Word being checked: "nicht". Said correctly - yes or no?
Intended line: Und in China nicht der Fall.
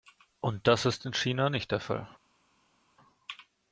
yes